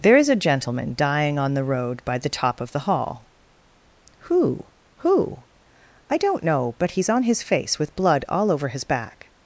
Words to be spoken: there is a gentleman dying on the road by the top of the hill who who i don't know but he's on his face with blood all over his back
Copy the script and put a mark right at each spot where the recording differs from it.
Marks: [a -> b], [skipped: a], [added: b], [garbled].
there is a gentleman dying on the road by the top of the [hill -> hall] who who i don't know but he's on his face with blood all over his back